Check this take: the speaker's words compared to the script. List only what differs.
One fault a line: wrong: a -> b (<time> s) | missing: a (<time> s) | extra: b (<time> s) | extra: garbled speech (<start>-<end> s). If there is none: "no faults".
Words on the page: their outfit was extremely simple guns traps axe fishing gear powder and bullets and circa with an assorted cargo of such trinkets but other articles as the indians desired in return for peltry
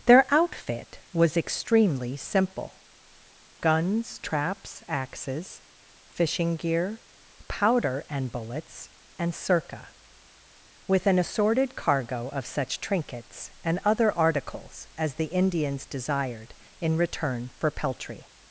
wrong: axe -> axes (4.9 s)
wrong: but -> and (13.6 s)